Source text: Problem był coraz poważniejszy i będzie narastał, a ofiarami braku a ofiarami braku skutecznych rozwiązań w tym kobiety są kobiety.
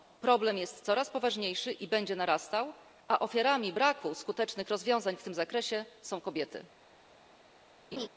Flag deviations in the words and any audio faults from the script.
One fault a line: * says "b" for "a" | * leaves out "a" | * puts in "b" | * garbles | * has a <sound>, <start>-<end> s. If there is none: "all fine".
* says "jest" for "był"
* leaves out "a ofiarami braku"
* says "zakresie" for "kobiety"
* has a laugh, 7.9-8.1 s